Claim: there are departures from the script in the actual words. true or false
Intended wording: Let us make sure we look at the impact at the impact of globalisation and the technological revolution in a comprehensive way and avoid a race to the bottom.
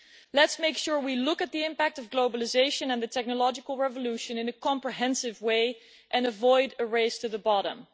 true